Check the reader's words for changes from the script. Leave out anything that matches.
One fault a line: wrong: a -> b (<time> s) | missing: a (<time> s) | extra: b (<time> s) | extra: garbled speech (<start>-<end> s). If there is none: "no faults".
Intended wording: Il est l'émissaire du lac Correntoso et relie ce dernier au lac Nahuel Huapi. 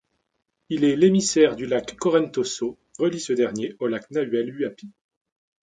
missing: et (2.8 s)